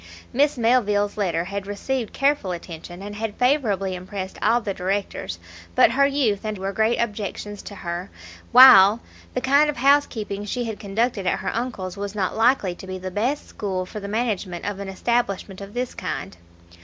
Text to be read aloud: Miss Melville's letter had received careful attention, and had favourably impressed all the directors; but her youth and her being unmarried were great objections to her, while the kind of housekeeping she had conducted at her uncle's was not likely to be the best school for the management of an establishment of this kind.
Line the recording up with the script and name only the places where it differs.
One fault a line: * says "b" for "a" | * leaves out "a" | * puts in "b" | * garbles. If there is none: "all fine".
* leaves out "her being unmarried"